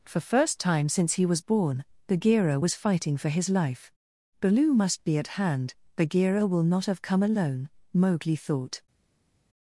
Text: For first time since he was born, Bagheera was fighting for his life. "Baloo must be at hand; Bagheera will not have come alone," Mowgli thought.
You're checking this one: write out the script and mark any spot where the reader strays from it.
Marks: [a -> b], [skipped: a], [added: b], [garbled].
For first time since he was born, Bagheera was fighting for his life. "Baloo must be at hand; Bagheera will not have come alone," Mowgli thought.